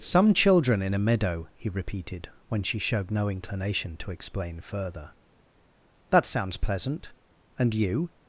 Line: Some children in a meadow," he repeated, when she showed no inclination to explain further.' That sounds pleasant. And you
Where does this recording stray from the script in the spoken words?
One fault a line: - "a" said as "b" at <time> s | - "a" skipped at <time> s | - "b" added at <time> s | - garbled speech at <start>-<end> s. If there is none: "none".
none